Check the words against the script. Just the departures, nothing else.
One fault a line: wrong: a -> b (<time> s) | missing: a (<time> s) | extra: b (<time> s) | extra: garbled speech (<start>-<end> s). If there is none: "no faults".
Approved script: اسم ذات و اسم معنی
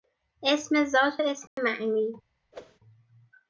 no faults